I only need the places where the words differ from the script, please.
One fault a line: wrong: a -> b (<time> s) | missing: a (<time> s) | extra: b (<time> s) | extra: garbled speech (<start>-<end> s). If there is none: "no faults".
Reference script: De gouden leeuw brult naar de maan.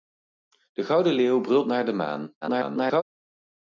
extra: garbled speech (2.4-3.0 s)